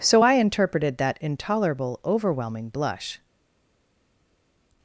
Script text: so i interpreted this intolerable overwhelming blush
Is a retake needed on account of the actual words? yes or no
yes